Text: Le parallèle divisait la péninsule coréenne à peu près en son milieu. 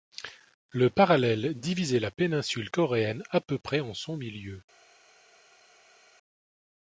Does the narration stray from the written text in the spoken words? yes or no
no